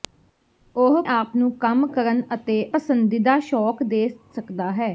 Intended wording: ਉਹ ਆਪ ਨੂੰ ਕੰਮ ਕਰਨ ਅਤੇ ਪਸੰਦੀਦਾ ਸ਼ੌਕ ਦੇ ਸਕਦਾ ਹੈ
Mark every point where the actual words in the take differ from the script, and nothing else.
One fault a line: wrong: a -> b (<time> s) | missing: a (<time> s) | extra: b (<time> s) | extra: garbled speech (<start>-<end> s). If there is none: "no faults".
no faults